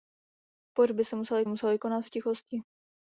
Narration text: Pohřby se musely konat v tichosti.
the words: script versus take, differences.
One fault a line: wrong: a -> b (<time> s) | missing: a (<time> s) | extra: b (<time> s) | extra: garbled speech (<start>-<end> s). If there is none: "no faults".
extra: musely (1.5 s)